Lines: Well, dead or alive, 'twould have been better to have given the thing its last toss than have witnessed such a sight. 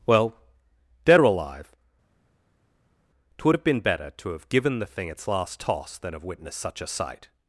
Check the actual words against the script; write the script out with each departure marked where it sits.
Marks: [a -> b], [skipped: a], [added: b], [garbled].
Well, dead or alive, 'twould have been better to have given the thing its last toss than have witnessed such a sight.